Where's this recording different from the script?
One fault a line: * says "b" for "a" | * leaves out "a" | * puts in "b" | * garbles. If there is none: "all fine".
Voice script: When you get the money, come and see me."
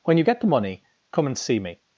all fine